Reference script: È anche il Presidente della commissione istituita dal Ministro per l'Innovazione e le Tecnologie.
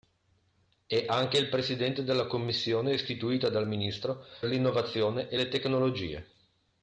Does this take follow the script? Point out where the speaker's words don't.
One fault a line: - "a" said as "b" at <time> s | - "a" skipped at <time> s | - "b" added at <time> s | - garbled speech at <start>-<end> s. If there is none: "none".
- "per" skipped at 4.2 s